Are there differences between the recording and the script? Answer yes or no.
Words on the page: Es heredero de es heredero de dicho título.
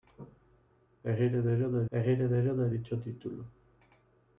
no